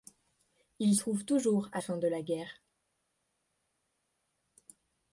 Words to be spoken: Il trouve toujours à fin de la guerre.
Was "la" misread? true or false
false